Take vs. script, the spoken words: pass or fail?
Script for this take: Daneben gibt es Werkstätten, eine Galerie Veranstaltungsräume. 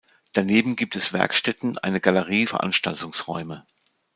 pass